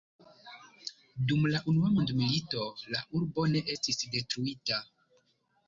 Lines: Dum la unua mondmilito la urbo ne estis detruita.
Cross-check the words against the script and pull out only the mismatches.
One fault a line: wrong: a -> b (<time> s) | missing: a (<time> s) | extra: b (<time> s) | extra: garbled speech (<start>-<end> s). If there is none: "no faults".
no faults